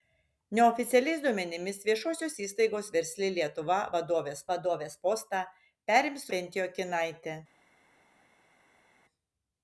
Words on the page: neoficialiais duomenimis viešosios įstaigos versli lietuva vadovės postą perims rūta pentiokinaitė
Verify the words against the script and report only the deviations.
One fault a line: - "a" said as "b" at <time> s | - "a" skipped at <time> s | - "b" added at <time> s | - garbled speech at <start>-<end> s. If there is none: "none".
- "vadovės" added at 4.5 s
- "rūta" skipped at 6.3 s